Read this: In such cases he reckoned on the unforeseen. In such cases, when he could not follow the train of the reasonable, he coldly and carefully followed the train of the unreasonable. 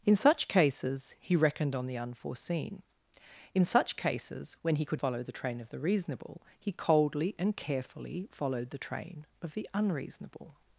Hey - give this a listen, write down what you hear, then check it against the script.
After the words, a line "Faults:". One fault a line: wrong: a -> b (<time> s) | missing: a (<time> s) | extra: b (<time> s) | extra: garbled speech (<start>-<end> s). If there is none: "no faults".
In such cases he reckoned on the unforeseen. In such cases, when he could follow the train of the reasonable, he coldly and carefully followed the train of the unreasonable.
Faults:
missing: not (5.0 s)